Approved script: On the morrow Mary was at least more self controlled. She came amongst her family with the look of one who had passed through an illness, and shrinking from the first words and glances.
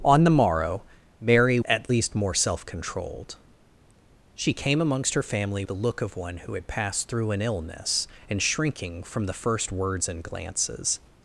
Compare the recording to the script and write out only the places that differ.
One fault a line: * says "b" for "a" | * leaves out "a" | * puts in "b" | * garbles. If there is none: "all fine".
* leaves out "was"
* leaves out "with"